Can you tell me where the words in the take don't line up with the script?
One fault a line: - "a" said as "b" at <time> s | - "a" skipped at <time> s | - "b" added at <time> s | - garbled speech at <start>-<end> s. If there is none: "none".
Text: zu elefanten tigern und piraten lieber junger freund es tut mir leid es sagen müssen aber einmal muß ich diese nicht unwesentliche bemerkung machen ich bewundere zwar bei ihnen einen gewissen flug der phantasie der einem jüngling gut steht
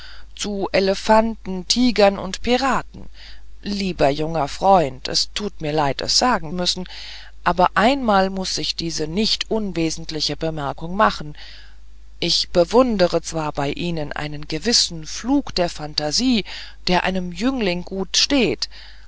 none